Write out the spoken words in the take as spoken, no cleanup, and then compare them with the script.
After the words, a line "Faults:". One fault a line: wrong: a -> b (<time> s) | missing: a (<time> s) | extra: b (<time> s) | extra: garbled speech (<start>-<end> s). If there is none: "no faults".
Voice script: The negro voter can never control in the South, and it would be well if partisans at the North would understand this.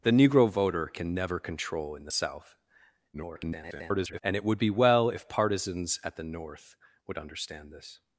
The negro voter can never control in the South, [garbled] and it would be well if partisans at the North would understand this.
Faults:
extra: garbled speech (3.1-4.2 s)